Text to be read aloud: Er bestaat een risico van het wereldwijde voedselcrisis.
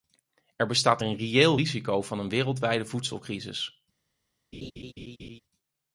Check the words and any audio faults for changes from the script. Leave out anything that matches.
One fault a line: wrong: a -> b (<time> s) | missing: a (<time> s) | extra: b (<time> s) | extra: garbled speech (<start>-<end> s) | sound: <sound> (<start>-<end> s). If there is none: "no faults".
extra: reëel (1.2 s)
wrong: het -> een (2.2 s)
sound: laugh (4.5-5.4 s)